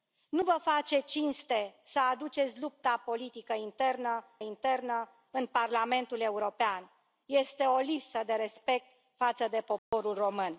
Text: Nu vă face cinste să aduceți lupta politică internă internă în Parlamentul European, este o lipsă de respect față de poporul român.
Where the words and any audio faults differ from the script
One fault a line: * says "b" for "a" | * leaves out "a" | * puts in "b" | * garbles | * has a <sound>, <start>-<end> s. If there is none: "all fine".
* has a dropout, 9.8-9.9 s